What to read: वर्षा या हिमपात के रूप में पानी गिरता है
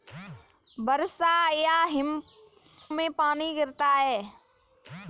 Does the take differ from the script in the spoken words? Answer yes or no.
yes